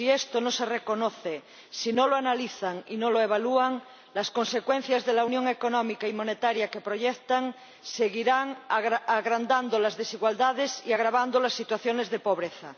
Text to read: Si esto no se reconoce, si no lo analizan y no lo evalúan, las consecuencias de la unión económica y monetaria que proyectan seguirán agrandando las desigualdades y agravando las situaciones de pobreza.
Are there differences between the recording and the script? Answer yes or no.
no